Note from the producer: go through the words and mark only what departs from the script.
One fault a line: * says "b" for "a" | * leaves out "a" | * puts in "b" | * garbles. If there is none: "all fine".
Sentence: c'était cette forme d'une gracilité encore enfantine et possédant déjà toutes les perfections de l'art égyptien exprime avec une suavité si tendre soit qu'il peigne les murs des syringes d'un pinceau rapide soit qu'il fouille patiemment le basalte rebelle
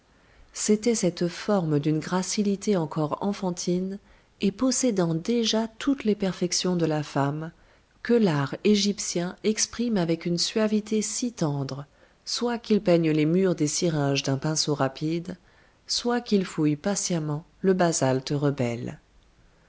* puts in "la femme que"